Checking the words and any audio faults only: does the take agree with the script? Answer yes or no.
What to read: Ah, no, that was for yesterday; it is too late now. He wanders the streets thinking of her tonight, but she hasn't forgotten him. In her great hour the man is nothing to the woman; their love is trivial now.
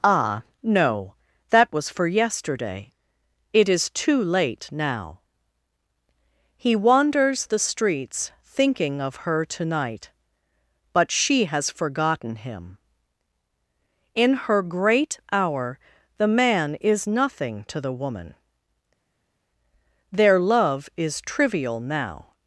no